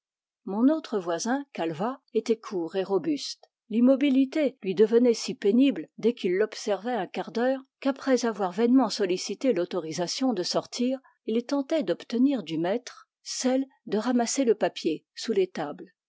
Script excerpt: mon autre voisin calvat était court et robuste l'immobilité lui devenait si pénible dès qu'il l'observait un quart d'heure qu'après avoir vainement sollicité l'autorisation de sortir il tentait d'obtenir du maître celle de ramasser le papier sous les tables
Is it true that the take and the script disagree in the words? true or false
false